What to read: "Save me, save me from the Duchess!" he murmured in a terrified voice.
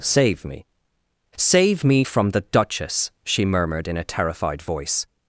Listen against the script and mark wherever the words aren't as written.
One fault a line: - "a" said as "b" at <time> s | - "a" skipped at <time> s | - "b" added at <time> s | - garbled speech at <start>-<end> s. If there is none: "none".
- "he" said as "she" at 3.3 s